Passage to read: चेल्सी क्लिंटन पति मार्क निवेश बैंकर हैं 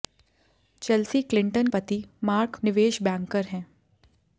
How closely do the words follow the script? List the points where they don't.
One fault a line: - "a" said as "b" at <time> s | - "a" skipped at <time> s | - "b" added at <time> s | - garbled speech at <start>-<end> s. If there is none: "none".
none